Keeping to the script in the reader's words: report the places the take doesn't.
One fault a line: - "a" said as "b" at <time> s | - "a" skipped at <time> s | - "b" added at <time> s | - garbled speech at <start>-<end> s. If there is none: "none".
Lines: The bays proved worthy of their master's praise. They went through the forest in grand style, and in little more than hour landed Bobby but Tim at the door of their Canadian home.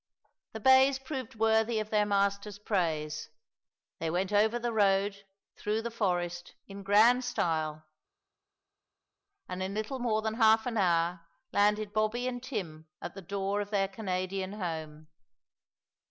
- "over the road" added at 4.3 s
- "half an" added at 10.3 s
- "but" said as "and" at 12.3 s